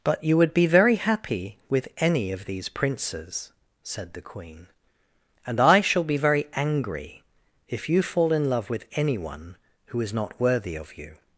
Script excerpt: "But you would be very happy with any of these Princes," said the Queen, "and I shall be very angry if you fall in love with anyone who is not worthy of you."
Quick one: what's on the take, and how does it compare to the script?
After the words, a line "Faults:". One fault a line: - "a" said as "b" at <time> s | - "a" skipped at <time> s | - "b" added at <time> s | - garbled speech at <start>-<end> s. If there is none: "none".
"But you would be very happy with any of these Princes," said the Queen, "and I shall be very angry if you fall in love with anyone who is not worthy of you."
Faults:
none